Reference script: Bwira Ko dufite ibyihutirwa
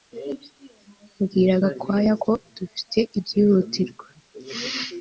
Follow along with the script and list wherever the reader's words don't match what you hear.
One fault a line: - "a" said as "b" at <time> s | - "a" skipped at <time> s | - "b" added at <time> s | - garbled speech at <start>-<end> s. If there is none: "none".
- "Gakwaya" added at 1.6 s